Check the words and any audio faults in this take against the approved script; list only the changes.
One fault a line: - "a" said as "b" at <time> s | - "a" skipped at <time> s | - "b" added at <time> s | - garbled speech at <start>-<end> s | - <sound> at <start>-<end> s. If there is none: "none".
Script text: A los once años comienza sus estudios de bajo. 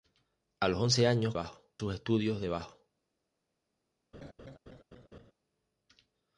- "comienza" said as "bajo" at 1.3 s
- laugh at 4.1-5.3 s